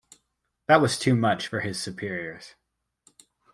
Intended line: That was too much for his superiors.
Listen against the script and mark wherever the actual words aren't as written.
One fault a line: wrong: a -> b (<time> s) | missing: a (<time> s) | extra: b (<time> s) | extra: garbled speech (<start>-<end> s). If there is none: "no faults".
no faults